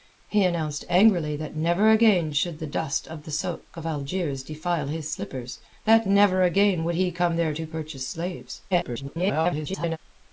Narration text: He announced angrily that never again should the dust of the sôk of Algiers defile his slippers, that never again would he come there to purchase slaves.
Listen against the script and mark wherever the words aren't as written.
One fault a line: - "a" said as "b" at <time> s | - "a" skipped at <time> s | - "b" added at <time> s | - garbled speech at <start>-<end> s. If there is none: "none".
- garbled speech at 8.7-10.0 s